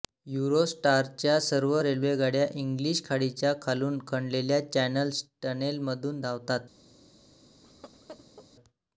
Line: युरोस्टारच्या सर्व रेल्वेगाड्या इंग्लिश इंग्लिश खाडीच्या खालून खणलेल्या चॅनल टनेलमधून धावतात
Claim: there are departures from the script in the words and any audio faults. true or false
true